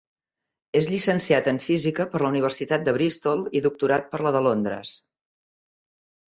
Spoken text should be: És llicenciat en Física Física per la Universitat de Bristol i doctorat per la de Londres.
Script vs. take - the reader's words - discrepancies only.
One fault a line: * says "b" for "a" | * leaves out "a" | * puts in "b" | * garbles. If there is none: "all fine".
* leaves out "Física"